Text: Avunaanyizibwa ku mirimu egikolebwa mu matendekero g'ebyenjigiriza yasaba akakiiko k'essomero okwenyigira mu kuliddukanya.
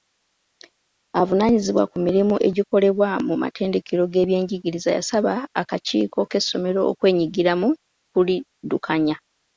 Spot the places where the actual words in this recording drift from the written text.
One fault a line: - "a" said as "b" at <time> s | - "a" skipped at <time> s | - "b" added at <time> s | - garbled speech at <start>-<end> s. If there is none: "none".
none